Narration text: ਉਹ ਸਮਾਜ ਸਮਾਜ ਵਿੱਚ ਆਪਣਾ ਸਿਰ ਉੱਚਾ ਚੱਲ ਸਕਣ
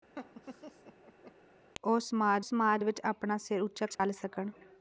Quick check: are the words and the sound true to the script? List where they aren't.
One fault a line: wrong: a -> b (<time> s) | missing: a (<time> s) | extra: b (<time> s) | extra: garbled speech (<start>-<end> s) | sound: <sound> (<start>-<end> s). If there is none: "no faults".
sound: laugh (0.2-1.3 s)
sound: dropout (4.0-4.0 s)